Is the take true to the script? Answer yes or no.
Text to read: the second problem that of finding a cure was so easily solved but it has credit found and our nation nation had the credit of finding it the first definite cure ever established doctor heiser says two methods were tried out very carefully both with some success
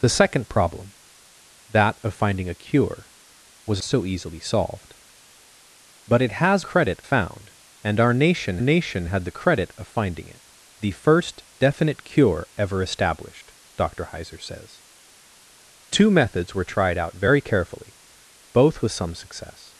yes